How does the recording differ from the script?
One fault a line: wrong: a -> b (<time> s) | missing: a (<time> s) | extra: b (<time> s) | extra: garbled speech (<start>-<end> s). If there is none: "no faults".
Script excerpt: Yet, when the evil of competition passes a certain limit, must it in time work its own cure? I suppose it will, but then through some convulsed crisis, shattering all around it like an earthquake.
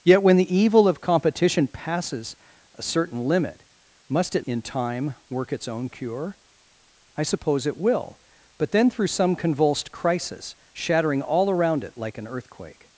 no faults